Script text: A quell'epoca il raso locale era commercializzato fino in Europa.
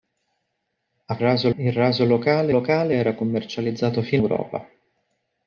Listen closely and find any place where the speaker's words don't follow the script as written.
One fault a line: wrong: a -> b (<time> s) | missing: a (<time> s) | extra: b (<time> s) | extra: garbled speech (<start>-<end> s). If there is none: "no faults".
wrong: quell'epoca -> raso (1.2 s)
extra: locale (2.5 s)
missing: in (4.2 s)